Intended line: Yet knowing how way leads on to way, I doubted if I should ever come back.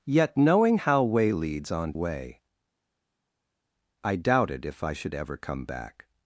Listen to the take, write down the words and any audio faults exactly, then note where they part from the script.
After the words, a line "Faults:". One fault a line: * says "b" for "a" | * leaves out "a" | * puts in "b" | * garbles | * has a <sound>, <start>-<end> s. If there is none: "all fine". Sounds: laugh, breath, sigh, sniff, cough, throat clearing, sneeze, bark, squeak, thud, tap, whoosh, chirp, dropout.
Yet knowing how way leads on way, I doubted if I should ever come back.
Faults:
* leaves out "to"